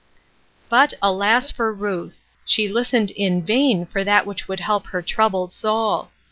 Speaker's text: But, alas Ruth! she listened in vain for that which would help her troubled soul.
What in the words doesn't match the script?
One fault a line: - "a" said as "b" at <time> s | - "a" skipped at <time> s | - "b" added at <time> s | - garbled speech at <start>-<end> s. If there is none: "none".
- "for" added at 1.5 s